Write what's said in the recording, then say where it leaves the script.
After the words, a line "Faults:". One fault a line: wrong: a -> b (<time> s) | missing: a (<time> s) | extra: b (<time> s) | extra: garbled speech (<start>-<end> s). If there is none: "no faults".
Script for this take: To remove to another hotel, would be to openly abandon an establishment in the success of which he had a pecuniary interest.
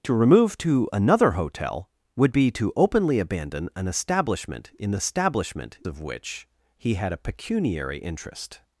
To remove to another hotel, would be to openly abandon an establishment in the establishment of which he had a pecuniary interest.
Faults:
wrong: success -> establishment (4.9 s)